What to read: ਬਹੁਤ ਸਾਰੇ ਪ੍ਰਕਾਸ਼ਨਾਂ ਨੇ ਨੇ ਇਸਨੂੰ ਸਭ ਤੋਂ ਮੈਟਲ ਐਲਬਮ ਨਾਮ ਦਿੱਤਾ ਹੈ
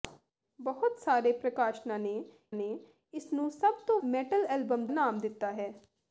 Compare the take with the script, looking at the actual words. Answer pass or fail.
pass